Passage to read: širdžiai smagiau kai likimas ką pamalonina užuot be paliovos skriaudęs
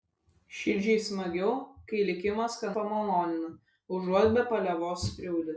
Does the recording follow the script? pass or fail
pass